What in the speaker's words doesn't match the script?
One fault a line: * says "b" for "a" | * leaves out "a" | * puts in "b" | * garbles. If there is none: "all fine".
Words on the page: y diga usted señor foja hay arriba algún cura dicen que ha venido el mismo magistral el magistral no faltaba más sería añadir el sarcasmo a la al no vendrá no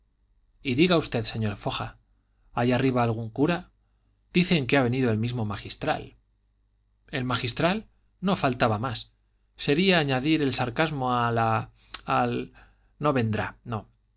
all fine